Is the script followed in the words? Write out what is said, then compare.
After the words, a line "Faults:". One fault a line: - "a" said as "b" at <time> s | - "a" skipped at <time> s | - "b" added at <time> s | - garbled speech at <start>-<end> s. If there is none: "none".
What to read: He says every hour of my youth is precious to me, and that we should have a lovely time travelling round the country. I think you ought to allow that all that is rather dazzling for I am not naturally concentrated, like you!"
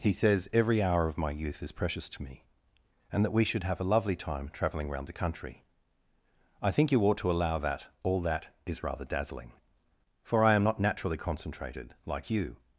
He says every hour of my youth is precious to me, and that we should have a lovely time travelling round the country. I think you ought to allow that all that is rather dazzling for I am not naturally concentrated, like you!"
Faults:
none